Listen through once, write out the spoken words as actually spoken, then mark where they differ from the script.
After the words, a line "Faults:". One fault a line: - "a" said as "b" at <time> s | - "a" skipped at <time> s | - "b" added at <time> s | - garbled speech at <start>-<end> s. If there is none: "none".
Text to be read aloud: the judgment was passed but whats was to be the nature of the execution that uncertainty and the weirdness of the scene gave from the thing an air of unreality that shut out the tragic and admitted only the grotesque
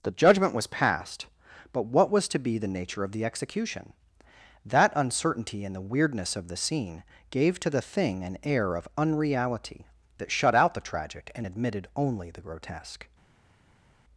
the judgment was passed but what was to be the nature of the execution that uncertainty and the weirdness of the scene gave to the thing an air of unreality that shut out the tragic and admitted only the grotesque
Faults:
- "whats" said as "what" at 1.9 s
- "from" said as "to" at 7.6 s